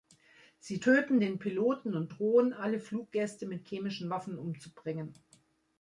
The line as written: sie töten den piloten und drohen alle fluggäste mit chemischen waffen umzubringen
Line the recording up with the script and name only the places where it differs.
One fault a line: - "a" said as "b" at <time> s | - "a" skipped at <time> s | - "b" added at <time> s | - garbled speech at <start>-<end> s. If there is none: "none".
none